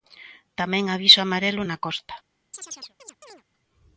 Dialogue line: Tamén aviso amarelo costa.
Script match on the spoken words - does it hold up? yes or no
no